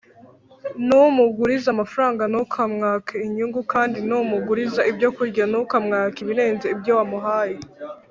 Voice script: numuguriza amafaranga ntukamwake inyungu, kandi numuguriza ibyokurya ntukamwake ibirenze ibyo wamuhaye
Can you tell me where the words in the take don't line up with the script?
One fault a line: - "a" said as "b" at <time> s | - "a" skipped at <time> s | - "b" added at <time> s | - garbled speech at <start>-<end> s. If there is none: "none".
none